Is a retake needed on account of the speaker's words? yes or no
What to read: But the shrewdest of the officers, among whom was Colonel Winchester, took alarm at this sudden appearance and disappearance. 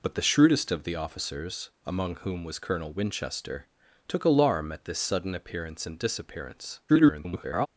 yes